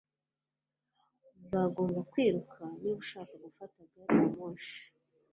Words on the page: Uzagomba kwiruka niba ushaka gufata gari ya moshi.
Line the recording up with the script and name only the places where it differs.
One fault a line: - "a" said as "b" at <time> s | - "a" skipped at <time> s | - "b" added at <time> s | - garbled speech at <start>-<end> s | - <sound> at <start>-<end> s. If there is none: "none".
none